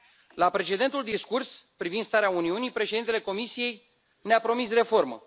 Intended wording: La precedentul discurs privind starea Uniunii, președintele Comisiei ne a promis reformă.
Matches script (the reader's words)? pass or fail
pass